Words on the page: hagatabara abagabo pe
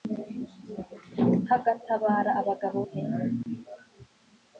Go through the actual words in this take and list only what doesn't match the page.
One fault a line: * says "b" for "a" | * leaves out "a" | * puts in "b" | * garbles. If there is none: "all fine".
all fine